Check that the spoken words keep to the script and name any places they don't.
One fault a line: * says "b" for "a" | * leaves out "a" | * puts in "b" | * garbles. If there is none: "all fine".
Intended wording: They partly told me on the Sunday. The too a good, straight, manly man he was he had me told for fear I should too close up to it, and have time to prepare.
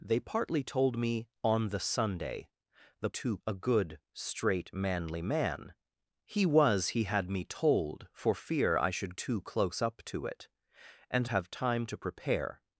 all fine